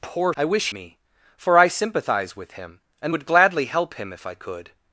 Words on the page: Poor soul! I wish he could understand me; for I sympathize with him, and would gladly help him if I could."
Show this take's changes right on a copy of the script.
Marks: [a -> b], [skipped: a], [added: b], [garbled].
Poor [skipped: soul!] I wish [skipped: he could understand] me; for I sympathize with him, and would gladly help him if I could."